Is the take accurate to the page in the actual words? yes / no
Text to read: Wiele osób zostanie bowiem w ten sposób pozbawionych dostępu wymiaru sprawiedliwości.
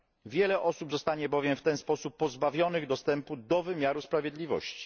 no